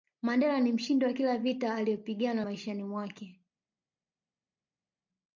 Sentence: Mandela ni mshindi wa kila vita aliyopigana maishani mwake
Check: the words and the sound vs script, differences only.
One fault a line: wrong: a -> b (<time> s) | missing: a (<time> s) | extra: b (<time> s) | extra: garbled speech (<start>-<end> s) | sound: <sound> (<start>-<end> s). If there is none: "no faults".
no faults